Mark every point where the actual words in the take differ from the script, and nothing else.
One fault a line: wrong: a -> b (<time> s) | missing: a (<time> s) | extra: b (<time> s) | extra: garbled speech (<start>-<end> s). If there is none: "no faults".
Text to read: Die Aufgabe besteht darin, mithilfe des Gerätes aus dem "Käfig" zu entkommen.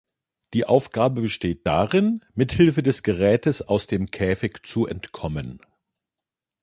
no faults